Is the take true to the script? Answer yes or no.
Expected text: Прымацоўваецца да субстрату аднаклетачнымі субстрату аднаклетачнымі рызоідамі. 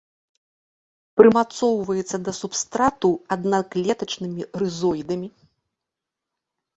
no